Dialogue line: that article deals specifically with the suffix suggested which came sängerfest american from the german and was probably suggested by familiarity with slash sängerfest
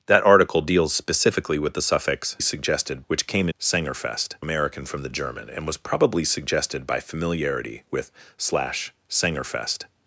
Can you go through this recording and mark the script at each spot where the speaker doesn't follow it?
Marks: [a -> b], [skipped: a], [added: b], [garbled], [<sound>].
that article deals specifically with the suffix suggested which came sängerfest american from the german and was probably suggested by familiarity with slash sängerfest